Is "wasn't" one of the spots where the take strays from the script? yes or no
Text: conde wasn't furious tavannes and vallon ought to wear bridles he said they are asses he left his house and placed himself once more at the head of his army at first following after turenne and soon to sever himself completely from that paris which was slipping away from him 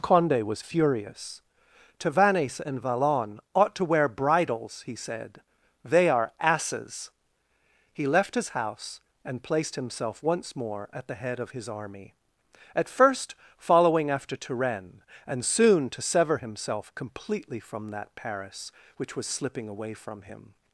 yes